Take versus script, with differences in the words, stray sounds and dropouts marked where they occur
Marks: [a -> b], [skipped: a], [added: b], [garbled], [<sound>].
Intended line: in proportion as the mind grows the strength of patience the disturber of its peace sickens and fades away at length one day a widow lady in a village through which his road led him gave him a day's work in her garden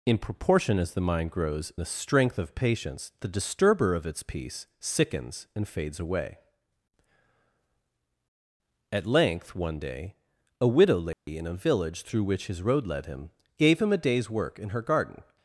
in proportion as the mind grows the strength of patience the disturber of its peace sickens and fades away at length one day a widow lady [dropout] in a village through which his road led him gave him a day's work in her garden